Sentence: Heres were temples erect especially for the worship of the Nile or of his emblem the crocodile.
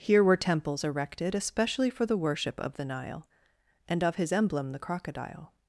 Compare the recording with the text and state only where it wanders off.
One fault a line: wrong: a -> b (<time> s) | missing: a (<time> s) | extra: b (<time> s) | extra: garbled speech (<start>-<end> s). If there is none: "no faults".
wrong: Heres -> Here (0.0 s)
wrong: erect -> erected (0.8 s)
wrong: or -> and (3.9 s)